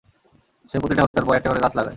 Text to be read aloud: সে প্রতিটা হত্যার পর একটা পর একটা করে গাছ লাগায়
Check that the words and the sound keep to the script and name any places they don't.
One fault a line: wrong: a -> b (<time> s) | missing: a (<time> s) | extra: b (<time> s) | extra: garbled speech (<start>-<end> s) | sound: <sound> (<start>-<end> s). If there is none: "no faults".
sound: dropout (1.1-1.1 s)
missing: পর একটা (1.5 s)